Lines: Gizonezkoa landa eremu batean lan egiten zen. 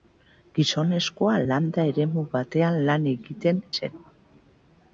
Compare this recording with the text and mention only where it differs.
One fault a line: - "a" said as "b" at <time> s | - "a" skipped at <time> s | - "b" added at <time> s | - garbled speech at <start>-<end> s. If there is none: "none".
none